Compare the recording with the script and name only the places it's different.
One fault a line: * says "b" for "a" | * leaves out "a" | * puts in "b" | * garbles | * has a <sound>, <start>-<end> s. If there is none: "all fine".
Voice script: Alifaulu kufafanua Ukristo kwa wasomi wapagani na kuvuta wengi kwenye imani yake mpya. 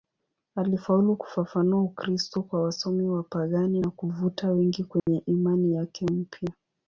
* has a dropout, 5.0-5.1 s